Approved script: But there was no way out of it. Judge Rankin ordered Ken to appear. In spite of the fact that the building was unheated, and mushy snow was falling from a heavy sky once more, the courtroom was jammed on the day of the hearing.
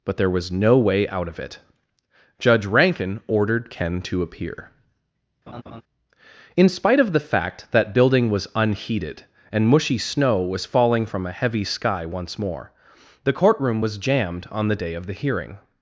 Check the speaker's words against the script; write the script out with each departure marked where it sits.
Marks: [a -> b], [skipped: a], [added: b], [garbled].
But there was no way out of it. Judge Rankin ordered Ken to appear. In spite of the fact that [skipped: the] building was unheated, and mushy snow was falling from a heavy sky once more, the courtroom was jammed on the day of the hearing.